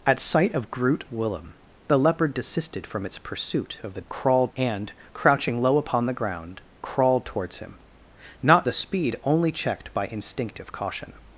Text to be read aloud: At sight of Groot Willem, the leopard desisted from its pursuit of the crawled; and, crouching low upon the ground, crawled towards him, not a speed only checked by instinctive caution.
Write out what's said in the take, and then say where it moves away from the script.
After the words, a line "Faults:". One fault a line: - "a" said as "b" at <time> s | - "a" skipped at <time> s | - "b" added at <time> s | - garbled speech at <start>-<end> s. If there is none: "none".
At sight of Groot Willem, the leopard desisted from its pursuit of the crawled; and, crouching low upon the ground, crawled towards him, not a speed only checked by instinctive caution.
Faults:
none